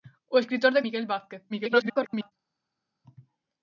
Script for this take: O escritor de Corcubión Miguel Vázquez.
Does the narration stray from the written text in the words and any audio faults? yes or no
yes